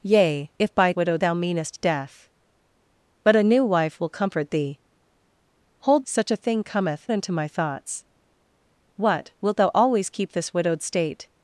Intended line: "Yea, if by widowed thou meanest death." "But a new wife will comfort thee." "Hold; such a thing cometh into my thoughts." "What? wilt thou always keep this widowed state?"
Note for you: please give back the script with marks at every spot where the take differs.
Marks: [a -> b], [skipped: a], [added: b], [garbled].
"Yea, if by widowed thou meanest death." "But a new wife will comfort thee." "Hold; such a thing cometh into my thoughts." "What? wilt thou always keep this widowed state?"